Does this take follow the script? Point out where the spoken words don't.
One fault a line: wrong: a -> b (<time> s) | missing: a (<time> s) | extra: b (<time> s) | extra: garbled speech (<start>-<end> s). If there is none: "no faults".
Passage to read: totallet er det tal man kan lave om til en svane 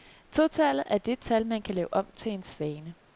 no faults